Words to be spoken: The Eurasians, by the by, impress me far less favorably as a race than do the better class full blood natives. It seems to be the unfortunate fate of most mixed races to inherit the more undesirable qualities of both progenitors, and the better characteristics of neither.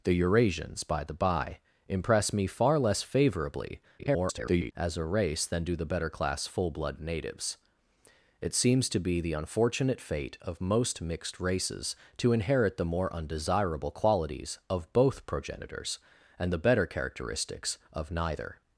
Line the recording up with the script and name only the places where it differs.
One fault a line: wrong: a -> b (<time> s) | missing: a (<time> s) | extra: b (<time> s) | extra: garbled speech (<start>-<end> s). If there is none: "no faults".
extra: garbled speech (4.0-4.7 s)